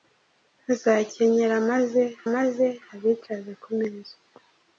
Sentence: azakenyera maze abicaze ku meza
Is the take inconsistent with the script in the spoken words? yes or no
yes